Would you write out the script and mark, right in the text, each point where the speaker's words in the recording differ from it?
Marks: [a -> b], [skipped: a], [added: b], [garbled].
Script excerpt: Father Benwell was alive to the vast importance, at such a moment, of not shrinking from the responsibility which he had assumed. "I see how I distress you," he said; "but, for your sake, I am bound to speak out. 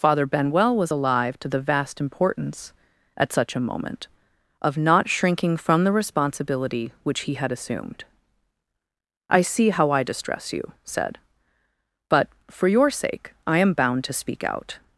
Father Benwell was alive to the vast importance, at such a moment, of not shrinking from the responsibility which he had assumed. "I see how I distress you," [skipped: he] said; "but, for your sake, I am bound to speak out.